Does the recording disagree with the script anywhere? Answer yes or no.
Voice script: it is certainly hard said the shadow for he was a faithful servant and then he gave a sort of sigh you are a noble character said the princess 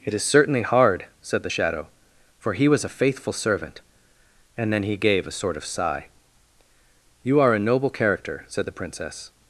no